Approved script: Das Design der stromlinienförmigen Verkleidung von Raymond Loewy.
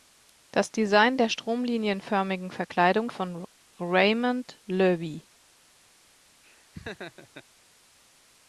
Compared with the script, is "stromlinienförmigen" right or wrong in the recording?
right